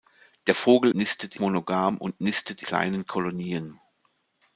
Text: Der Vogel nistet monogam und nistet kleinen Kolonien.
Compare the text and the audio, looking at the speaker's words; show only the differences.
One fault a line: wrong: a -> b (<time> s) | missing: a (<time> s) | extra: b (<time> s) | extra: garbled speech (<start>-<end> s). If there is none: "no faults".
no faults